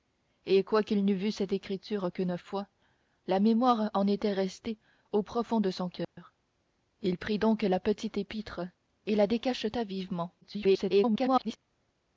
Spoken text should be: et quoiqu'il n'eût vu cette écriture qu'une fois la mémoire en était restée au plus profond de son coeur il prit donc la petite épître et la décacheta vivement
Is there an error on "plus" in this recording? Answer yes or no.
yes